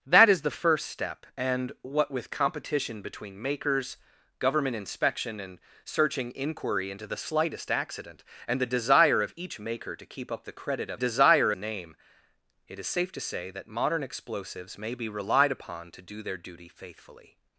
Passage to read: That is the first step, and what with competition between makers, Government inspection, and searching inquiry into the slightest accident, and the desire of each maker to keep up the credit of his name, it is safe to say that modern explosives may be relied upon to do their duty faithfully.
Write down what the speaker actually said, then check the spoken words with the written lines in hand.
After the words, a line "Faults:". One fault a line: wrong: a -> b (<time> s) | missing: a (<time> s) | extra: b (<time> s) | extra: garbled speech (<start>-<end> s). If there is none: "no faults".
That is the first step, and what with competition between makers, Government inspection, and searching inquiry into the slightest accident, and the desire of each maker to keep up the credit of desire name, it is safe to say that modern explosives may be relied upon to do their duty faithfully.
Faults:
wrong: his -> desire (10.9 s)